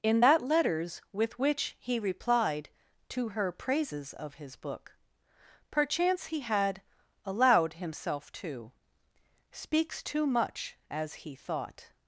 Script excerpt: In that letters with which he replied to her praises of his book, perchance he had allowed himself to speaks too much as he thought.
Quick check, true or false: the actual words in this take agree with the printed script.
true